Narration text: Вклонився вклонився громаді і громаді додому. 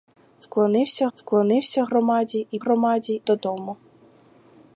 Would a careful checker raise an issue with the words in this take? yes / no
no